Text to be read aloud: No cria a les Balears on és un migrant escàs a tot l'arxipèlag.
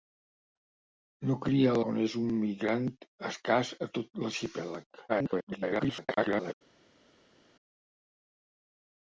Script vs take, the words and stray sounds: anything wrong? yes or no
yes